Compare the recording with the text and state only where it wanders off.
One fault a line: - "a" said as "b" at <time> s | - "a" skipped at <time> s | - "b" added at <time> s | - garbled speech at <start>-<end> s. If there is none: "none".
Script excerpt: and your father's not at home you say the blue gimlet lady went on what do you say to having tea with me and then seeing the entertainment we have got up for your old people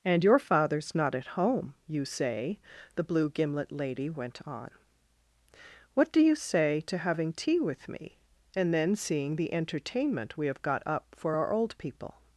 - "your" said as "our" at 11.4 s